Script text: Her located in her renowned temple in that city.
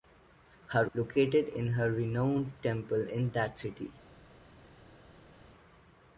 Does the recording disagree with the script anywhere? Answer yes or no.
no